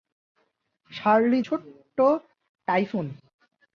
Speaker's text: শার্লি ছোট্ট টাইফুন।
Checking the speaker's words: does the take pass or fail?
pass